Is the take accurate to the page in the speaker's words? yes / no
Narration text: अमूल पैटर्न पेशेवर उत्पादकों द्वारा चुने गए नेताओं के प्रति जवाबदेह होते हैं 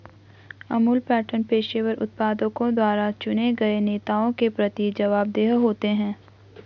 yes